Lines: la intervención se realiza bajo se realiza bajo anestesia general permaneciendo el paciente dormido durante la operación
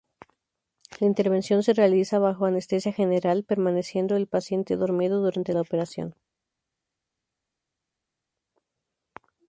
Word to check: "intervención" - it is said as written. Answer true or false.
true